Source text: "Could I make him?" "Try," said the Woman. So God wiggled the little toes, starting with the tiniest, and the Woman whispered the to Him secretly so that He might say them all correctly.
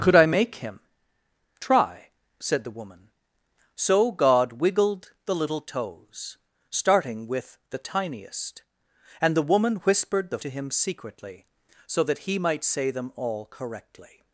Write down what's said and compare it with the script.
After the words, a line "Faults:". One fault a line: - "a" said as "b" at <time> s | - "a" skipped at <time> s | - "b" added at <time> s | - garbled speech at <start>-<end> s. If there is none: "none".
"Could I make him?" "Try," said the Woman. So God wiggled the little toes, starting with the tiniest, and the Woman whispered the to Him secretly so that He might say them all correctly.
Faults:
none